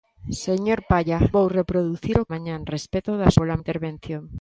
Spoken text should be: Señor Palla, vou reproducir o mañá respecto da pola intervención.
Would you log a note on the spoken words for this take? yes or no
no